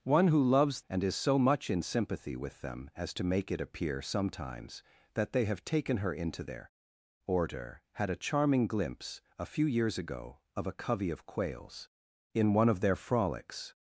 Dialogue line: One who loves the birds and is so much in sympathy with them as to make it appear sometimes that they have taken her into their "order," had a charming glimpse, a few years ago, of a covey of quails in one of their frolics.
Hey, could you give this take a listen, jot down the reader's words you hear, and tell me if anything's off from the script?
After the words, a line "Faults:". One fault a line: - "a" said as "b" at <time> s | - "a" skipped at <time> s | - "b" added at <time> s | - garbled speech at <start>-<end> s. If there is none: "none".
One who loves and is so much in sympathy with them as to make it appear sometimes that they have taken her into their "order," had a charming glimpse, a few years ago, of a covey of quails in one of their frolics.
Faults:
- "the birds" skipped at 0.8 s